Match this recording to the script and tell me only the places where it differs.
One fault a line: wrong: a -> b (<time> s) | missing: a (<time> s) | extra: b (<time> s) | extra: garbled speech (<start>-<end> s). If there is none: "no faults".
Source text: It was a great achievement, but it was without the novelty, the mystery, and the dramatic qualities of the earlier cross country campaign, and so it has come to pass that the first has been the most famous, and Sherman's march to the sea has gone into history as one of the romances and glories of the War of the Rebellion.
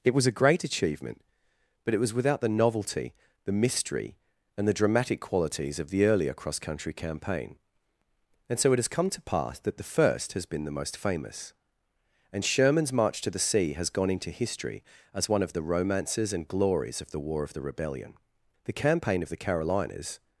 extra: The campaign of the Carolinas (18.6 s)